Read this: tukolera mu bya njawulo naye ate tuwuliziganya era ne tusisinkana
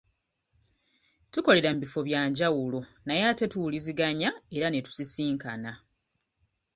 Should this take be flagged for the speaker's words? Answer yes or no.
yes